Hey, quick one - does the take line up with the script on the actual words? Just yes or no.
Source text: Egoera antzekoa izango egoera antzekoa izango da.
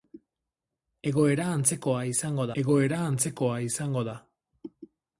yes